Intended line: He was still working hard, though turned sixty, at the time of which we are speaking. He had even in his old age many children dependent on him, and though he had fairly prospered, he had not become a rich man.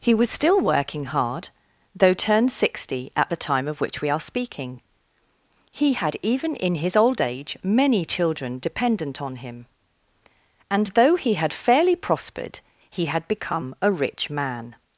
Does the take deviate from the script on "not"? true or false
true